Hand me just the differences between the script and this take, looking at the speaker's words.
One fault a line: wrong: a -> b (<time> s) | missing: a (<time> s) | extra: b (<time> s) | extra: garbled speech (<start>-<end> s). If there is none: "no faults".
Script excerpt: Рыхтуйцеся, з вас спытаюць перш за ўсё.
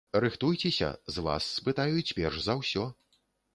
no faults